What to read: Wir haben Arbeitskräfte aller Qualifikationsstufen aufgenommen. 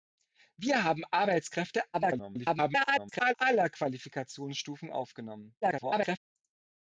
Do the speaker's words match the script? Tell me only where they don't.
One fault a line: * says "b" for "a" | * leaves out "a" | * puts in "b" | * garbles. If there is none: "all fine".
* garbles
* garbles